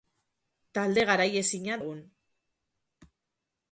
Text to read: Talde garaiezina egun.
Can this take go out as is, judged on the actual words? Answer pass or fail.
pass